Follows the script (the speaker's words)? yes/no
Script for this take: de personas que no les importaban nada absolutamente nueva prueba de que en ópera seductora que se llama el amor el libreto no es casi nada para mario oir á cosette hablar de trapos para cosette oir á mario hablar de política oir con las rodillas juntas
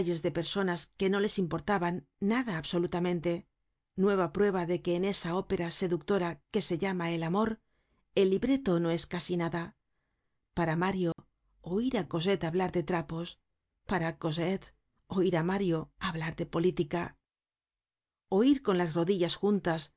no